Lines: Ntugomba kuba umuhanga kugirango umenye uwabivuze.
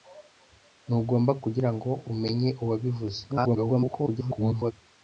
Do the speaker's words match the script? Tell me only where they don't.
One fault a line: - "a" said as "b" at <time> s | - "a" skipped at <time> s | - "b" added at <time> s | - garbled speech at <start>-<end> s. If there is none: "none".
- "kuba umuhanga" skipped at 1.3 s
- garbled speech at 3.3-4.7 s